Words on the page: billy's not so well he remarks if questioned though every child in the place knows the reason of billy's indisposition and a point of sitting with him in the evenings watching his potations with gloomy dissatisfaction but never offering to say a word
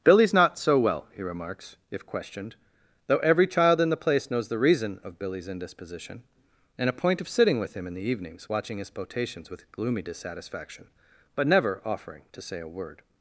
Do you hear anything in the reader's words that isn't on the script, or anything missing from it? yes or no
no